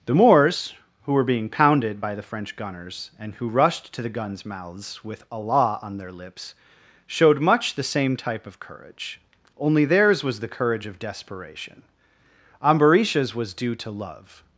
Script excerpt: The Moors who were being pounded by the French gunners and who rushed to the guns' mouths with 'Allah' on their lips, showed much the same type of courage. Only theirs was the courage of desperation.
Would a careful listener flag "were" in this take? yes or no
no